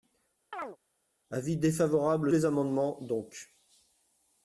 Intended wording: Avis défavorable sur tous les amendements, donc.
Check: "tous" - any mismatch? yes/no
yes